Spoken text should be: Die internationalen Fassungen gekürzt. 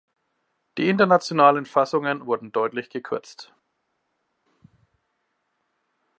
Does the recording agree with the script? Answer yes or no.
no